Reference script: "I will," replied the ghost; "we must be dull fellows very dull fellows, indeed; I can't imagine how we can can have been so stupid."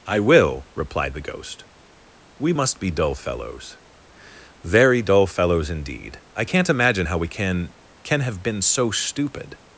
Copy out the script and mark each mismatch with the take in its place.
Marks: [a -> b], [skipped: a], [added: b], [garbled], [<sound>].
"I will," replied the ghost; "we must be dull fellows very dull fellows, indeed; I can't imagine how we can can have been so stupid."